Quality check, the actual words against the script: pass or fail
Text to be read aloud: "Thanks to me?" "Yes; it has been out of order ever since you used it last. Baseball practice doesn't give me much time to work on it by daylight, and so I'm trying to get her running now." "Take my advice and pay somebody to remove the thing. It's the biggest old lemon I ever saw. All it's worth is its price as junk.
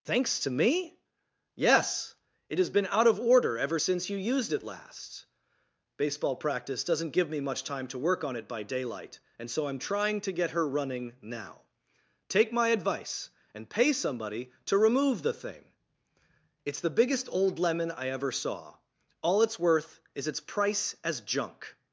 pass